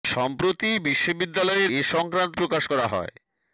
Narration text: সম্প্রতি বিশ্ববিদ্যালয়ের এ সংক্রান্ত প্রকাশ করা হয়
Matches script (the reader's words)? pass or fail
pass